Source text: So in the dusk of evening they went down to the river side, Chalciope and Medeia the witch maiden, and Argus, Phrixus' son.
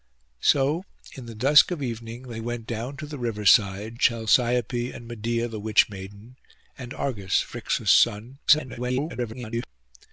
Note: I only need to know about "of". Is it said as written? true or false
true